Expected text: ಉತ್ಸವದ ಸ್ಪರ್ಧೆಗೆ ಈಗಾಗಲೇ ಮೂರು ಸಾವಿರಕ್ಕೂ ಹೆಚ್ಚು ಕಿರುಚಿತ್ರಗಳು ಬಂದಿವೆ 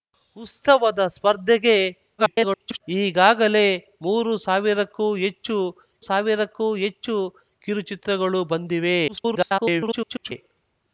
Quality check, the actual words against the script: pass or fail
fail